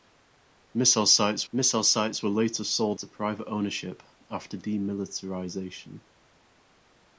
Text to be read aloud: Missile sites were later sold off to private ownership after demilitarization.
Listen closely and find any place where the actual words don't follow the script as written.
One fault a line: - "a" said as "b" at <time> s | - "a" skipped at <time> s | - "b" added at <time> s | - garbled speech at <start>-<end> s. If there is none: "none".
- "missile sites" added at 1.5 s
- "off" skipped at 3.0 s